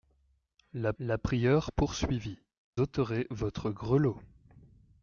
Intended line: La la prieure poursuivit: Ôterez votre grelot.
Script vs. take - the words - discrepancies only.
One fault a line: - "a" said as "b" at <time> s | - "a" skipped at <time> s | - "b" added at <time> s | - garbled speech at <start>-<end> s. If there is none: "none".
none